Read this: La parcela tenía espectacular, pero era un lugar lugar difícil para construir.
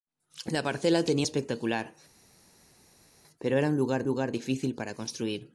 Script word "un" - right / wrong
right